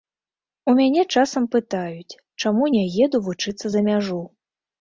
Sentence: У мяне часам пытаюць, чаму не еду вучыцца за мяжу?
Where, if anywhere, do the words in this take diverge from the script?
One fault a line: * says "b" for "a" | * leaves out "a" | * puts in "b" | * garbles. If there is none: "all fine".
all fine